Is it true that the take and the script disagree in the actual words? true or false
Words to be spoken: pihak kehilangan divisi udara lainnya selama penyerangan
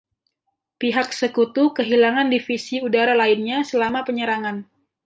true